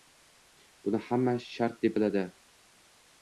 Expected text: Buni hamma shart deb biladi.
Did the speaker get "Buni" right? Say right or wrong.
right